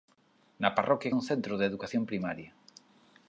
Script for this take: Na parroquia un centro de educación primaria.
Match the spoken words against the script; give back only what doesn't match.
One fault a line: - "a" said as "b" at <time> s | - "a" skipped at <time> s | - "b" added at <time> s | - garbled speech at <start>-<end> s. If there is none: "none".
none